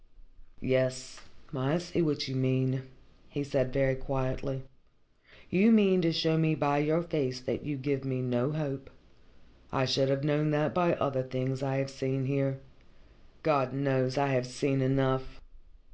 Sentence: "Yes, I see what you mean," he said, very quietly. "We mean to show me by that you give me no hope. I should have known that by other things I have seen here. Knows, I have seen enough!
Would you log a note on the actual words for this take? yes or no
yes